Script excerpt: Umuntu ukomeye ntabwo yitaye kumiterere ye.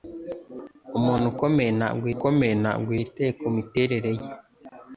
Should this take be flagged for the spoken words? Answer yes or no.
yes